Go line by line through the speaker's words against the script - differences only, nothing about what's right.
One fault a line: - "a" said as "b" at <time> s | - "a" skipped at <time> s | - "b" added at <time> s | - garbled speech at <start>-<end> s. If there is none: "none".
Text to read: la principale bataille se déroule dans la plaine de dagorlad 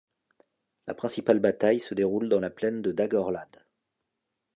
none